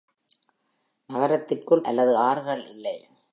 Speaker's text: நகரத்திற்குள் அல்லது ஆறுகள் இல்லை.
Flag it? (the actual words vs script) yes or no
no